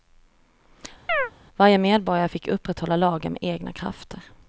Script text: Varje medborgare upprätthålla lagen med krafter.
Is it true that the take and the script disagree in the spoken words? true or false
true